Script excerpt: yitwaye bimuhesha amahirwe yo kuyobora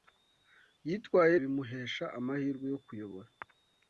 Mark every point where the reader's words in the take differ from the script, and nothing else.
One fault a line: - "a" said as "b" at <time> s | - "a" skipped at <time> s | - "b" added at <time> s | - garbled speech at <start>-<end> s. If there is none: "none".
none